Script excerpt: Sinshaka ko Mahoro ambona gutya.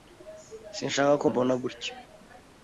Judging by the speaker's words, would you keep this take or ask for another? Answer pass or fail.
fail